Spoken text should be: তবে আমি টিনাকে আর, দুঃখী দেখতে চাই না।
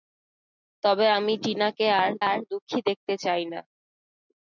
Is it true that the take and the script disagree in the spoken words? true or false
true